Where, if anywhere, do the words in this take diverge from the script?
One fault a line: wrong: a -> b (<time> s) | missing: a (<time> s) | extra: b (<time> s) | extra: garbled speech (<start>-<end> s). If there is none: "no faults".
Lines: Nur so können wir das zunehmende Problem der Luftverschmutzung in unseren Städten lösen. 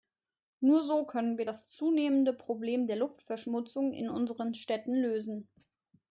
no faults